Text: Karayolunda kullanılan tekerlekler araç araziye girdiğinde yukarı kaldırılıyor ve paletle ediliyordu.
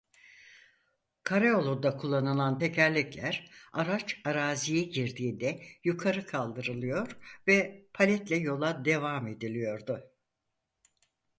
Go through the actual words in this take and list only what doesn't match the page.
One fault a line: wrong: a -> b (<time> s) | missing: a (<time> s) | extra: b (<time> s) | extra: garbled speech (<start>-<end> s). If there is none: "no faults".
extra: yola devam (8.3 s)